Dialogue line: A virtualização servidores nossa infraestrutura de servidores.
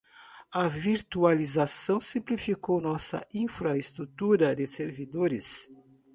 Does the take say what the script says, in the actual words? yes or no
no